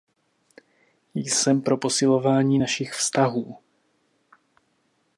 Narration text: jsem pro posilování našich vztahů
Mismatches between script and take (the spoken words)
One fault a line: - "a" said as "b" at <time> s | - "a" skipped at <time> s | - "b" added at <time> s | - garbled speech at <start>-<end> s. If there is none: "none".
none